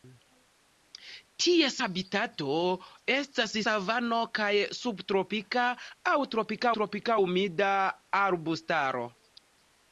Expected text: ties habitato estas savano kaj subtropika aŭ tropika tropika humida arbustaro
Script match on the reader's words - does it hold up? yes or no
yes